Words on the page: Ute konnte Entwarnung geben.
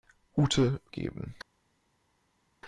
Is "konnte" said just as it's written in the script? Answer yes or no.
no